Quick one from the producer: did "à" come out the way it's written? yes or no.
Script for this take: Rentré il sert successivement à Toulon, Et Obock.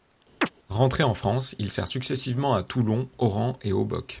yes